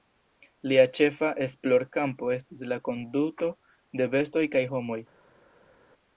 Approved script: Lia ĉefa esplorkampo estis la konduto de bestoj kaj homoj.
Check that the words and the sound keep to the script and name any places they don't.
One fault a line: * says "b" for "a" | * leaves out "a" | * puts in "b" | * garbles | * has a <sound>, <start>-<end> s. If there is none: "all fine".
all fine